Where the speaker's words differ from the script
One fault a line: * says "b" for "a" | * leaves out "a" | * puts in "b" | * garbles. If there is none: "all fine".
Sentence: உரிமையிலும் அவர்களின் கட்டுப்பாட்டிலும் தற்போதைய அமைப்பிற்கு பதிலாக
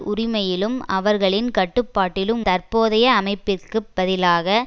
all fine